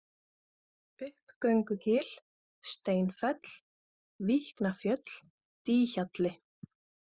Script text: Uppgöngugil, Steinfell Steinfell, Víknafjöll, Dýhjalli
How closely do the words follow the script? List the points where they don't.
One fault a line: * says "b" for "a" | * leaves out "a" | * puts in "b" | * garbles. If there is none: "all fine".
* leaves out "Steinfell"